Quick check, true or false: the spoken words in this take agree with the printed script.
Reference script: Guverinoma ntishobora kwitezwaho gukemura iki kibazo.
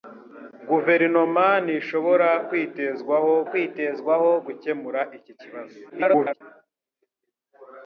false